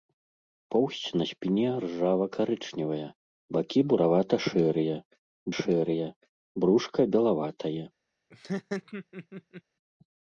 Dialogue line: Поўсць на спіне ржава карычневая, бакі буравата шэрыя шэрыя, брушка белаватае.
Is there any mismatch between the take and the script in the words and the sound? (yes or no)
yes